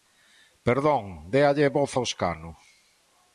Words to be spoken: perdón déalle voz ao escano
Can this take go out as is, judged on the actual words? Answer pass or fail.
pass